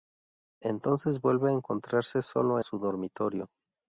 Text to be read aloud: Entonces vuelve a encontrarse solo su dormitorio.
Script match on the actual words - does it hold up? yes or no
yes